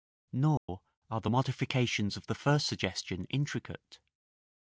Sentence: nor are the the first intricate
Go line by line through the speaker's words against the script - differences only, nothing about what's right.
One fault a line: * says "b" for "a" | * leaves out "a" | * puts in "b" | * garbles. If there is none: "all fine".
* puts in "modifications of"
* puts in "suggestion"